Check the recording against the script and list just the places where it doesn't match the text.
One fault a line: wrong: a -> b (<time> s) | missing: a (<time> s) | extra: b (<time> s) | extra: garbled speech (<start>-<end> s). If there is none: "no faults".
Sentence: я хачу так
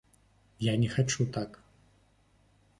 extra: не (0.8 s)